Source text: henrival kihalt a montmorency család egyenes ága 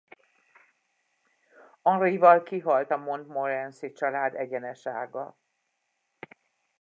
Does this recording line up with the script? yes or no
yes